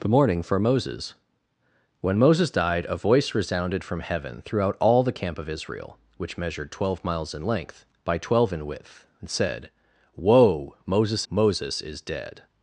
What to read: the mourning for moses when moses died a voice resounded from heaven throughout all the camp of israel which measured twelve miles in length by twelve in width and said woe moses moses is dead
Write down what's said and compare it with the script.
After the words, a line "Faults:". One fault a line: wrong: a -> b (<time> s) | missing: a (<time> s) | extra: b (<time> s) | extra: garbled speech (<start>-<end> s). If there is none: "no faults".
the mourning for moses when moses died a voice resounded from heaven throughout all the camp of israel which measured twelve miles in length by twelve in width and said woe moses moses is dead
Faults:
no faults